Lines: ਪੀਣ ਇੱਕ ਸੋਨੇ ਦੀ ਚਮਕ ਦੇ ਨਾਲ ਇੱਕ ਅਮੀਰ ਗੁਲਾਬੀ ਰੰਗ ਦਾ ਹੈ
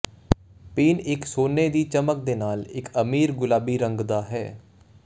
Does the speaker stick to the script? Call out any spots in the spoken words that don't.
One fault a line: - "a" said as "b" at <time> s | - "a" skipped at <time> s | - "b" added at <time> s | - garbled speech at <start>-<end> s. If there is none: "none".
none